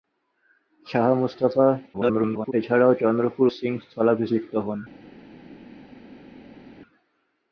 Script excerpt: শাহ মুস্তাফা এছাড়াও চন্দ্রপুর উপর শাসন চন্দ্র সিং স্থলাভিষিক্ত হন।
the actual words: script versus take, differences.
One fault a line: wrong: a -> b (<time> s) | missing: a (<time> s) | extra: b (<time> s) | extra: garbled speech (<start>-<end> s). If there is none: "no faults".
extra: garbled speech (1.9-2.5 s)
missing: উপর শাসন চন্দ্র (3.5 s)